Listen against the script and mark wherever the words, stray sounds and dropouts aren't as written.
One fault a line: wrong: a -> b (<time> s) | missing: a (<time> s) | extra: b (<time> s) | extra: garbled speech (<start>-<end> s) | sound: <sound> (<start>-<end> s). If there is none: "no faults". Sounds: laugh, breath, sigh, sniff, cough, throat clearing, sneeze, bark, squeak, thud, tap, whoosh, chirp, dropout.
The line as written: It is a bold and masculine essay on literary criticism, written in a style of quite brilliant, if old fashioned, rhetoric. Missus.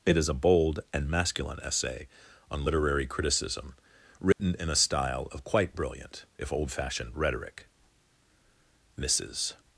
sound: dropout (4.3-4.4 s)